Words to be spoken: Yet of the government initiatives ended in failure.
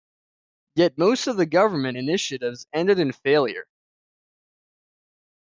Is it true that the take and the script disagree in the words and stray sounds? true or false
true